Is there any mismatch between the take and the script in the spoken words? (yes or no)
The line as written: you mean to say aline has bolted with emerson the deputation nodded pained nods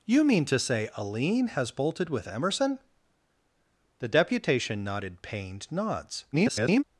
yes